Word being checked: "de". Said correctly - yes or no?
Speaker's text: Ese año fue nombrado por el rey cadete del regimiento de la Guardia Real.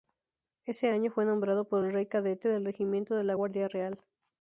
yes